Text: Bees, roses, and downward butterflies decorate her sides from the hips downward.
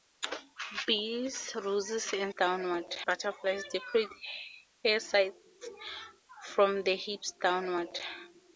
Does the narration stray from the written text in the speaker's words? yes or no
no